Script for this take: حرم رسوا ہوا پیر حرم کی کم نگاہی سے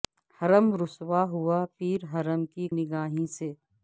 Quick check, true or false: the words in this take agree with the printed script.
false